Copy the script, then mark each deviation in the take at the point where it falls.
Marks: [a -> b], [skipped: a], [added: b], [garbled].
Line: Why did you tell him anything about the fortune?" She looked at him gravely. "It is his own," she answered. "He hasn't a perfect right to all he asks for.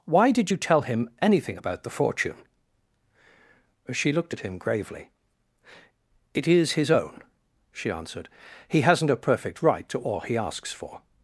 Why did you tell him anything about the fortune?" She looked at him gravely. "It is his own," she answered. "He hasn't a perfect right to all he asks for.